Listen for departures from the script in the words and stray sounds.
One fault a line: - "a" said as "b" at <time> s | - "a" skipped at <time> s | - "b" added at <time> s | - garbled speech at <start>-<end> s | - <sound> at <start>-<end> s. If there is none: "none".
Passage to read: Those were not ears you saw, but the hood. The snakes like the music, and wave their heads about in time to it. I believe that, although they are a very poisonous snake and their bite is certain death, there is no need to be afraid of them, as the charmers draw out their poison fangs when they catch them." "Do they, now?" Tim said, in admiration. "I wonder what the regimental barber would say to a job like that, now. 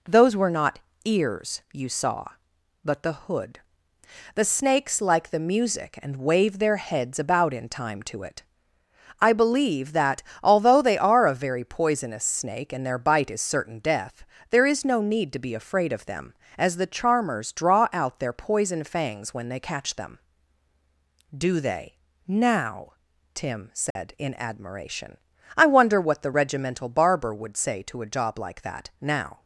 - dropout at 23.9-24.0 s